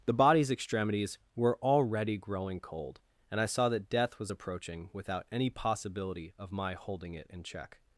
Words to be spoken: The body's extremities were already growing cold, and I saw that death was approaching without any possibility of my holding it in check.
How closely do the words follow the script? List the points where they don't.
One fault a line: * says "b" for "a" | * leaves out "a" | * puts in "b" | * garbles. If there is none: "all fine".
all fine